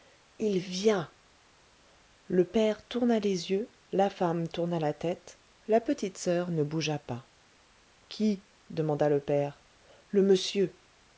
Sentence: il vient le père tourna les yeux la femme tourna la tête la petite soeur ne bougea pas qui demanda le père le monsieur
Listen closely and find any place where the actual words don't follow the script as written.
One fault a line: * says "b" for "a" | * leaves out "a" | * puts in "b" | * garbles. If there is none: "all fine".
all fine